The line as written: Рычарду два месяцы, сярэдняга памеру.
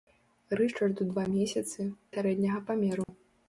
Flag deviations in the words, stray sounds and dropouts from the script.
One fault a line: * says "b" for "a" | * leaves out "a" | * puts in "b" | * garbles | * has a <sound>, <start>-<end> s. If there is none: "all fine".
* has a dropout, 3.0-3.1 s